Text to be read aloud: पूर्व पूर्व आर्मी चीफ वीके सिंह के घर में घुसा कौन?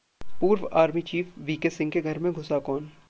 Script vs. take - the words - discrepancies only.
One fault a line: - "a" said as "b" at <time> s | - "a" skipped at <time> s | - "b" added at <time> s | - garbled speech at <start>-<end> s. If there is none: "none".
- "पूर्व" skipped at 0.7 s